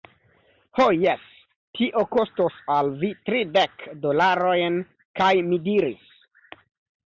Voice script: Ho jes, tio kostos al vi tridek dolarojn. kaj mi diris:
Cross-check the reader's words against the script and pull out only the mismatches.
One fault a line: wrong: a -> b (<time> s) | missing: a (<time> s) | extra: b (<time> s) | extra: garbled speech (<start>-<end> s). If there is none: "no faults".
no faults